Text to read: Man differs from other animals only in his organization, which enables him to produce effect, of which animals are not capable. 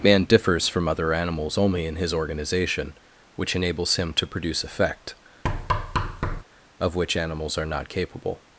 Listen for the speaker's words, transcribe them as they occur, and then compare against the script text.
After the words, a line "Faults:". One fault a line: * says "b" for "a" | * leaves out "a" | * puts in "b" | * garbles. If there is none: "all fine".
Man differs from other animals only in his organization, which enables him to produce effect, of which animals are not capable.
Faults:
all fine